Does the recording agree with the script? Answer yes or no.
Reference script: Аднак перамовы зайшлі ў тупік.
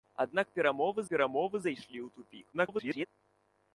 no